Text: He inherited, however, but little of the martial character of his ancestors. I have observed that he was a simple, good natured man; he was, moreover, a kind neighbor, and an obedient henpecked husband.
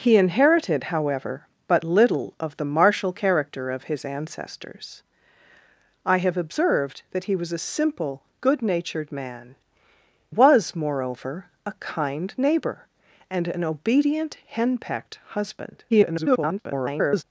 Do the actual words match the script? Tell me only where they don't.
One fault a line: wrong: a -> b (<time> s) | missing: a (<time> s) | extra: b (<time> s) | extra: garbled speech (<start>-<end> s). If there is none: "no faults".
missing: he (9.6 s)
extra: garbled speech (15.9-17.2 s)